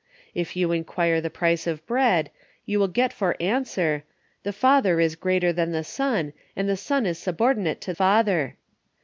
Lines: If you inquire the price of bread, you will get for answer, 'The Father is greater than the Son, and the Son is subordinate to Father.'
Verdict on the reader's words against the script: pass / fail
pass